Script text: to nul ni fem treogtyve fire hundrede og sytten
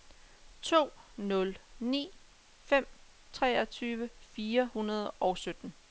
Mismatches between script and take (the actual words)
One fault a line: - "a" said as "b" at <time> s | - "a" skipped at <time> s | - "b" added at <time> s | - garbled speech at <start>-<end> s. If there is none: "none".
none